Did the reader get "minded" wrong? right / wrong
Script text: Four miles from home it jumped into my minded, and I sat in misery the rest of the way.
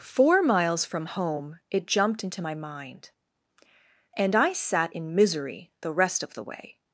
wrong